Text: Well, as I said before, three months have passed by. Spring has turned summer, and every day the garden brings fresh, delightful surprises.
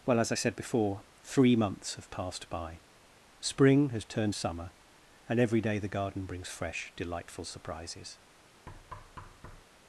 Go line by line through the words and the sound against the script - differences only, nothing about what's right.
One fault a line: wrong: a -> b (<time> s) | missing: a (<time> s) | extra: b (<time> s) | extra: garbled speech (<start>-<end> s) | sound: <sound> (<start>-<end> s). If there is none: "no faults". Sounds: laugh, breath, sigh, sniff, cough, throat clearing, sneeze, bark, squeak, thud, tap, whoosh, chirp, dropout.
sound: thud (8.7-9.6 s)